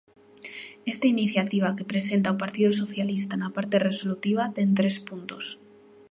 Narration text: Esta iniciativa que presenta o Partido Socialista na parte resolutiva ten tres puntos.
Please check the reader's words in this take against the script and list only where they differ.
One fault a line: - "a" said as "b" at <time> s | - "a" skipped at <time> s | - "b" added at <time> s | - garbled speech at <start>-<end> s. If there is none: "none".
none